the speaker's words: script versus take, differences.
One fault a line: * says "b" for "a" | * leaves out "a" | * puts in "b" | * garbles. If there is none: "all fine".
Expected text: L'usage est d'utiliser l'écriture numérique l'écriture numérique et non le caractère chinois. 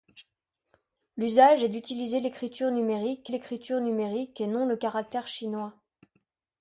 all fine